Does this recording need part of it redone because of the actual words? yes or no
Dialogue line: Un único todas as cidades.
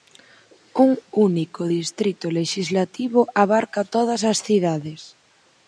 yes